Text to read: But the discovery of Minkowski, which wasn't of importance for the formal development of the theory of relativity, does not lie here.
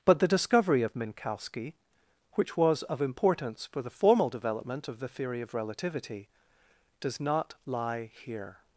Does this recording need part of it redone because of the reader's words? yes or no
yes